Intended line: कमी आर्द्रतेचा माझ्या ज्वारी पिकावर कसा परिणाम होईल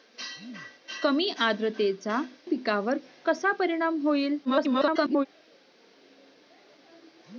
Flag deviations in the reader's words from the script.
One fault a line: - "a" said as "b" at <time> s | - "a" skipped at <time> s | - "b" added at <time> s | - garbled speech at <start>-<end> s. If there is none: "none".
- "माझ्या ज्वारी" skipped at 2.2 s
- garbled speech at 4.4-5.3 s